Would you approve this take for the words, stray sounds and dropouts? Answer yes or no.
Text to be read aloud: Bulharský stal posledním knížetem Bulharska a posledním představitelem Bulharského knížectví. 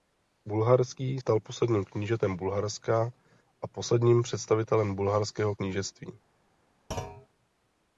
no